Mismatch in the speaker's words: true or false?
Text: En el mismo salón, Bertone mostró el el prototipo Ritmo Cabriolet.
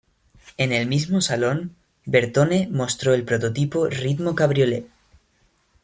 true